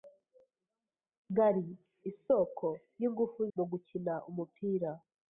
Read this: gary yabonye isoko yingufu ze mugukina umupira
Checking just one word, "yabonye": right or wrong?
wrong